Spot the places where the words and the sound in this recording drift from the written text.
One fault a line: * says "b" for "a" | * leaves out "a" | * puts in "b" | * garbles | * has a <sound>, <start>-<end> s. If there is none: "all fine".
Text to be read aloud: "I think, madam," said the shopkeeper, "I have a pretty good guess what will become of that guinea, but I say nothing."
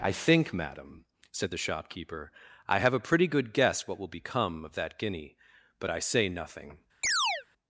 * has a chirp, 7.0-7.5 s